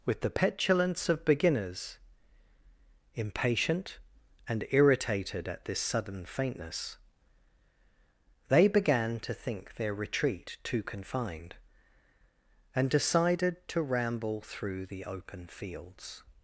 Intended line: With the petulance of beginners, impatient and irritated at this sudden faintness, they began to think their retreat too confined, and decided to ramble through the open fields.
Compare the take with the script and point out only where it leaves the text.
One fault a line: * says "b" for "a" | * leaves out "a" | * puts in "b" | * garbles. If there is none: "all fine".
all fine